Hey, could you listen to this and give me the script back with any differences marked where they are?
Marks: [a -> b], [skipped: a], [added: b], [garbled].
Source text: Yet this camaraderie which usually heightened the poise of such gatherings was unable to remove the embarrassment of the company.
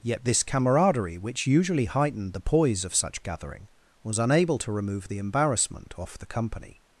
Yet this camaraderie which usually heightened the poise of such [gatherings -> gathering] was unable to remove the embarrassment [of -> off] the company.